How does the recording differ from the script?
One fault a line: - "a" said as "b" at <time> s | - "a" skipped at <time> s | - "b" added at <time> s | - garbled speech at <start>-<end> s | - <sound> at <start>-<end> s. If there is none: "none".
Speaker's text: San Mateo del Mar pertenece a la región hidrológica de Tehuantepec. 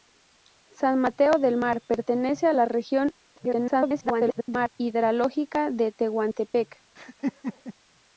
- garbled speech at 3.4-4.7 s
- laugh at 7.0-7.7 s